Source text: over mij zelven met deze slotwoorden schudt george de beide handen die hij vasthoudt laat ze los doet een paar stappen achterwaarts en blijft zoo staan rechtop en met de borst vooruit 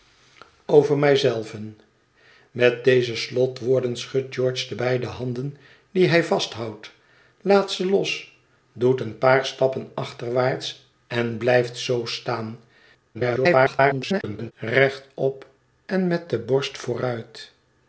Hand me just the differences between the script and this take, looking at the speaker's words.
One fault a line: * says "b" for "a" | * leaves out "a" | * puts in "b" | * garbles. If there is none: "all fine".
* garbles